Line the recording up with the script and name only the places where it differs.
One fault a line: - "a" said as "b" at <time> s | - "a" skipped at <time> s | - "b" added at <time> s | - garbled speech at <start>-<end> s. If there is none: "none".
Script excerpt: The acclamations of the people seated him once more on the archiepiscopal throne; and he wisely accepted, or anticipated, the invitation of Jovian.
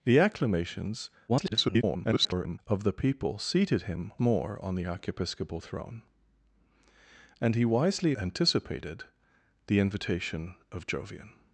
- garbled speech at 1.3-2.6 s
- "once" skipped at 4.1 s
- "accepted or" skipped at 8.1 s